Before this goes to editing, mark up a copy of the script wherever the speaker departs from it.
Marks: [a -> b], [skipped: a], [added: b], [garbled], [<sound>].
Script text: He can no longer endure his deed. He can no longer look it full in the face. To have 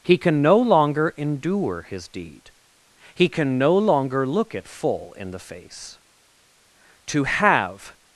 He can no longer endure his deed. He can no longer look it full in the face. To have